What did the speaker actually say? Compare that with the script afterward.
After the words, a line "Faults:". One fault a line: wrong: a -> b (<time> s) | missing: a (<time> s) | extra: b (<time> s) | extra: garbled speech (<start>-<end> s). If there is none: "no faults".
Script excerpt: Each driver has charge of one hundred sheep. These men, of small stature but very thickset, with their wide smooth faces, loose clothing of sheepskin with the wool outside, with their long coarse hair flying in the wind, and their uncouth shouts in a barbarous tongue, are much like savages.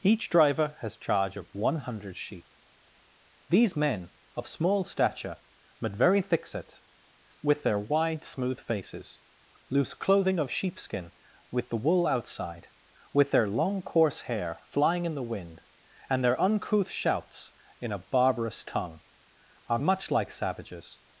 Each driver has charge of one hundred sheep. These men, of small stature but very thickset, with their wide smooth faces, loose clothing of sheepskin with the wool outside, with their long coarse hair flying in the wind, and their uncouth shouts in a barbarous tongue, are much like savages.
Faults:
no faults